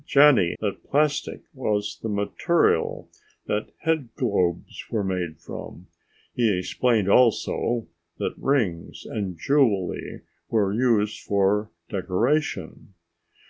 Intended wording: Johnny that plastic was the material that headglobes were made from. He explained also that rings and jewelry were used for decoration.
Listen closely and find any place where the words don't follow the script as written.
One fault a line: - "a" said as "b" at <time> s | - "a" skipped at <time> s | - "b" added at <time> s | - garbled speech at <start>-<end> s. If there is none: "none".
none